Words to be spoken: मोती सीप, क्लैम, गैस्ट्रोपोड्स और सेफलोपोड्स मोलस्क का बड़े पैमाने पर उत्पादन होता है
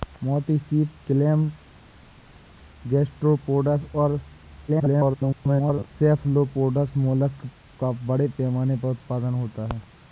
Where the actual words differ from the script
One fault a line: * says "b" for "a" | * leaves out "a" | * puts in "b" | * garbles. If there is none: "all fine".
* garbles